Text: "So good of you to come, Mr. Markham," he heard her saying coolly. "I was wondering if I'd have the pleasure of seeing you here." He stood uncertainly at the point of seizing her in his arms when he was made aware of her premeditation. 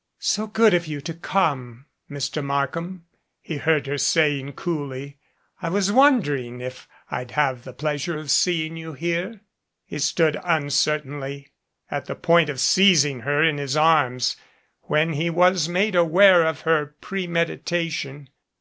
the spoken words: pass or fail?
pass